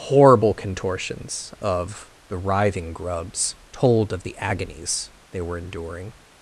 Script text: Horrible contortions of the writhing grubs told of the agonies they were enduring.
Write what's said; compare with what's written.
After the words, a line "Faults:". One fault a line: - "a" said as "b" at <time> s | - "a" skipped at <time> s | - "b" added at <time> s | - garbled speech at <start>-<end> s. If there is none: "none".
Horrible contortions of the writhing grubs told of the agonies they were enduring.
Faults:
none